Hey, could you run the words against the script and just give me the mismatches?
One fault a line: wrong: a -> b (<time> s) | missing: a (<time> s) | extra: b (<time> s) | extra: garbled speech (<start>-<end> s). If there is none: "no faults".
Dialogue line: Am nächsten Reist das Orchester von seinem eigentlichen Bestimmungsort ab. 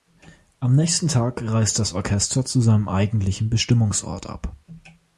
extra: Tag (1.1 s)
wrong: von -> zu (2.4 s)